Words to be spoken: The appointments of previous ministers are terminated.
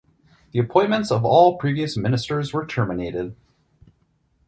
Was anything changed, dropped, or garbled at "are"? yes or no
yes